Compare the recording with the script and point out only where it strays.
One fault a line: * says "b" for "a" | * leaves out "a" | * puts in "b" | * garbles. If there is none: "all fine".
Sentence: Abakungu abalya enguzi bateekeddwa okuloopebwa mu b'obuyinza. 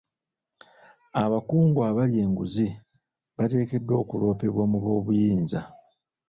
all fine